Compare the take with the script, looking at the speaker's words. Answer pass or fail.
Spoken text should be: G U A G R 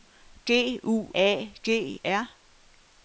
pass